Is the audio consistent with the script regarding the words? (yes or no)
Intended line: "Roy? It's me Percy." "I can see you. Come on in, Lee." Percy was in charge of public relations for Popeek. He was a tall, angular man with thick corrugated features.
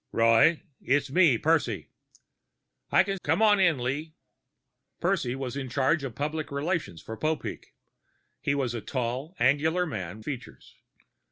no